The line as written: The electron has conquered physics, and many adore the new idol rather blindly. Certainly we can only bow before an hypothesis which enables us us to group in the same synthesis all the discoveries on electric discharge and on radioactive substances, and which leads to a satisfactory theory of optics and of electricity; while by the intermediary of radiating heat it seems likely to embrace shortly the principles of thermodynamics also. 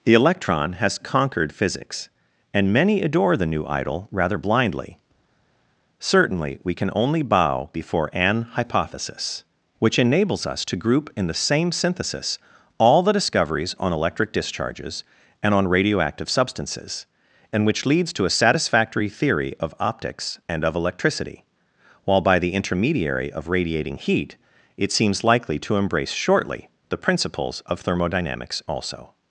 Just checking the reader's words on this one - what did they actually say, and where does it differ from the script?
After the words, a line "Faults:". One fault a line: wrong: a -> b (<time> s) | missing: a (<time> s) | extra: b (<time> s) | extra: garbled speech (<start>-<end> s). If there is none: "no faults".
The electron has conquered physics, and many adore the new idol rather blindly. Certainly we can only bow before an hypothesis which enables us to group in the same synthesis all the discoveries on electric discharges and on radioactive substances, and which leads to a satisfactory theory of optics and of electricity; while by the intermediary of radiating heat it seems likely to embrace shortly the principles of thermodynamics also.
Faults:
missing: us (10.6 s)
wrong: discharge -> discharges (14.3 s)